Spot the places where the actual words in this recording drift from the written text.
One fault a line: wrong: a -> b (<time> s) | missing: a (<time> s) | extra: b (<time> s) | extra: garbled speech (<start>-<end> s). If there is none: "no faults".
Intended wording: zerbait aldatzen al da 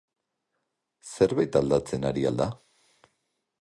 extra: ari (2.1 s)